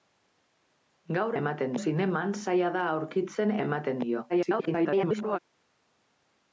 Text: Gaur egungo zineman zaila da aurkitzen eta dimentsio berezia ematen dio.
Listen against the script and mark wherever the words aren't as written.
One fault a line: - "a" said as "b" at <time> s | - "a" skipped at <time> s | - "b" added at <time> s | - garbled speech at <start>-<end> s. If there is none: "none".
- "egungo" said as "ematen" at 1.4 s
- "eta dimentsio berezia" skipped at 3.5 s
- garbled speech at 4.3-5.4 s